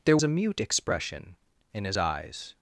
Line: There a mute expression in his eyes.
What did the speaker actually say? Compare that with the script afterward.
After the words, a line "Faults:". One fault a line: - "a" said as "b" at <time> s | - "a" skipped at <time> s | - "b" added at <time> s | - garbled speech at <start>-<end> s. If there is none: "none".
There a mute expression in his eyes.
Faults:
none